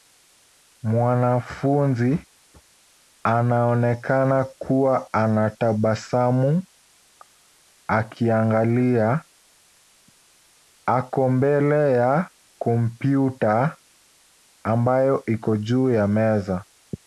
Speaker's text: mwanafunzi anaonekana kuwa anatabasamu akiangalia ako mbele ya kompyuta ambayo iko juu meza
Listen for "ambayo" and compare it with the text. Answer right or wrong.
right